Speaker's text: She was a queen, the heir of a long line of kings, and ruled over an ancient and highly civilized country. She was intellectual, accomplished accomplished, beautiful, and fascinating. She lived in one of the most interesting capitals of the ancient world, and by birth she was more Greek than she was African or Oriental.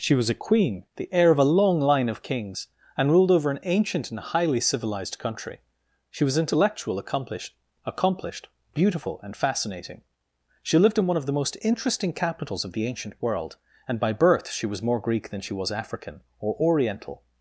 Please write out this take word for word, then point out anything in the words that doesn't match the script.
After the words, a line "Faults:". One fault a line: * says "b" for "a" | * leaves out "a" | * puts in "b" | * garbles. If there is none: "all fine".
She was a queen, the heir of a long line of kings, and ruled over an ancient and highly civilized country. She was intellectual, accomplished accomplished, beautiful, and fascinating. She lived in one of the most interesting capitals of the ancient world, and by birth she was more Greek than she was African or Oriental.
Faults:
all fine